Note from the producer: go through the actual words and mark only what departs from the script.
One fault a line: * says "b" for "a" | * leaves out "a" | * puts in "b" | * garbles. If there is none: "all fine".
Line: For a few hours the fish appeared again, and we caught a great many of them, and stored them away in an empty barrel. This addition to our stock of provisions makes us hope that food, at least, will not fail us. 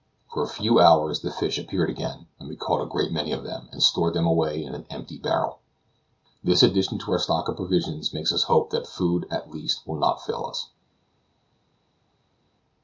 all fine